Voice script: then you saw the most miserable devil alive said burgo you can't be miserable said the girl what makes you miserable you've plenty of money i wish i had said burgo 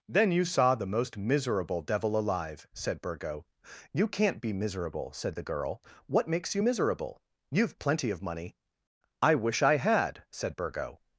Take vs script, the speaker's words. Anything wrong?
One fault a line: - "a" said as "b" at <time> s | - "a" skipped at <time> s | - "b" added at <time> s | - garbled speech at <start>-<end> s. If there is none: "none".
none